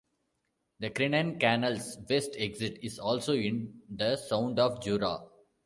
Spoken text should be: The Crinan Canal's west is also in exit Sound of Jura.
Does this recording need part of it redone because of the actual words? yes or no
yes